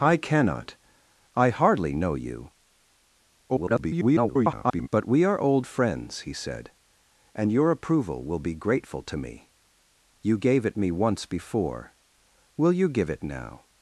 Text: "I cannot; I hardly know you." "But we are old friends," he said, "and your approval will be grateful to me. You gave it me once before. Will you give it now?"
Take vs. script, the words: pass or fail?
fail